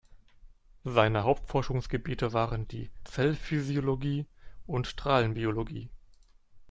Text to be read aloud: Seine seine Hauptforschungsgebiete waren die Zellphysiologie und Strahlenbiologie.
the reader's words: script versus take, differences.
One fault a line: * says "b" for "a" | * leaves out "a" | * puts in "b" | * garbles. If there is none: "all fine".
* leaves out "seine"